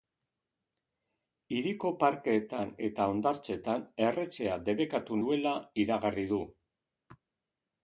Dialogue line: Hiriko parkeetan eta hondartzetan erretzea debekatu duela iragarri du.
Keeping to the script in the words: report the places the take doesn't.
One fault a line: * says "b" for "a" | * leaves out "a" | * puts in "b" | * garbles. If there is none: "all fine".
all fine